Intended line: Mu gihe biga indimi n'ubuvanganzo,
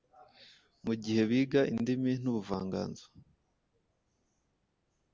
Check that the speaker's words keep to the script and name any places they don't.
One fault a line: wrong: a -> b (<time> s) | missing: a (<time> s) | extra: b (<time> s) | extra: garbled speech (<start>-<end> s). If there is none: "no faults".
no faults